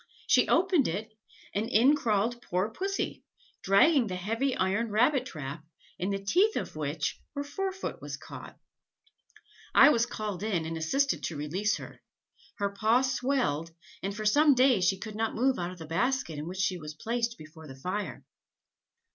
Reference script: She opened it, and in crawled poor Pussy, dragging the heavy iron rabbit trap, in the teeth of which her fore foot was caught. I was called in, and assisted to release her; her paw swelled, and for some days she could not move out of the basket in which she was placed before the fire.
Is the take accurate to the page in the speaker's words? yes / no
yes